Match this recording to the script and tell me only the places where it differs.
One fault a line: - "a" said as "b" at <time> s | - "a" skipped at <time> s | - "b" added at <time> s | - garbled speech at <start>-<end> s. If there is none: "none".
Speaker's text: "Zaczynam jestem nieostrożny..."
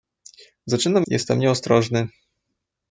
none